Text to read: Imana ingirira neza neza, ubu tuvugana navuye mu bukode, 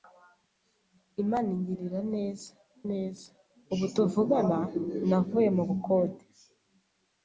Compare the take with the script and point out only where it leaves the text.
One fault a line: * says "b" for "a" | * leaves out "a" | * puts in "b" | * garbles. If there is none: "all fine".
all fine